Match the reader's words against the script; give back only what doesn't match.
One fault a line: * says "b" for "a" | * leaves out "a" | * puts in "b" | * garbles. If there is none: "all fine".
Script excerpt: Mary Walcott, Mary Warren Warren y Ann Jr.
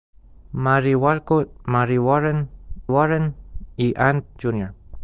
all fine